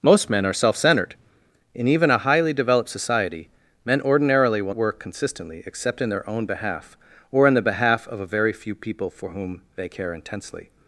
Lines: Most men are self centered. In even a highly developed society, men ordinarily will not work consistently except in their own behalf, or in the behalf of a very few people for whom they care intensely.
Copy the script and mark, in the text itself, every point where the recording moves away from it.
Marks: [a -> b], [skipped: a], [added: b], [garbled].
Most men are self centered. In even a highly developed society, men ordinarily will [skipped: not] work consistently except in their own behalf, or in the behalf of a very few people for whom they care intensely.